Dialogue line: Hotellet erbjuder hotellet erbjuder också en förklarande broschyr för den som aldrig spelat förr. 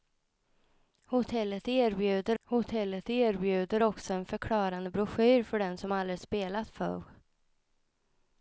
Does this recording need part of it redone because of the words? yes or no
no